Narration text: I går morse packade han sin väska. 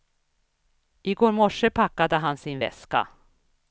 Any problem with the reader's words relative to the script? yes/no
no